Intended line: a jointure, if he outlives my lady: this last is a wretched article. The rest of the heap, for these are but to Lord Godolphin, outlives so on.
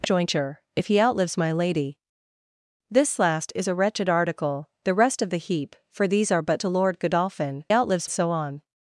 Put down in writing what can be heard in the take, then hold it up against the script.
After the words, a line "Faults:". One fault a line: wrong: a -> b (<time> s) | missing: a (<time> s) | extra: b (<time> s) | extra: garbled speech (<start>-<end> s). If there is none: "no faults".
a jointure, if he outlives my lady: this last is a wretched article. The rest of the heap, for these are but to Lord Godolphin, outlives so on.
Faults:
no faults